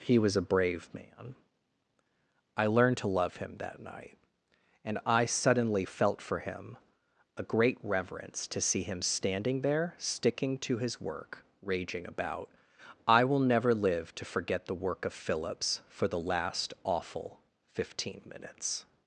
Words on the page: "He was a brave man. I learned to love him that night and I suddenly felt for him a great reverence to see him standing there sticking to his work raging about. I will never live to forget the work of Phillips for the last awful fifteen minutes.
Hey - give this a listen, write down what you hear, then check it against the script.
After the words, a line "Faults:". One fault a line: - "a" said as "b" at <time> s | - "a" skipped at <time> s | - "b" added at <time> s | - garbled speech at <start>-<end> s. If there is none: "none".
"He was a brave man. I learned to love him that night and I suddenly felt for him a great reverence to see him standing there sticking to his work raging about. I will never live to forget the work of Phillips for the last awful fifteen minutes.
Faults:
none